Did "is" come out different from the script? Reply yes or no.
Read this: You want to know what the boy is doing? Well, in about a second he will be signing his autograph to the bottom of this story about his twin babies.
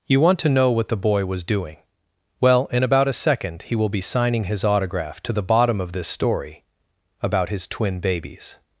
yes